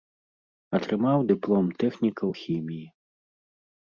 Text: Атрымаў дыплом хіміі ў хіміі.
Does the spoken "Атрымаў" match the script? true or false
true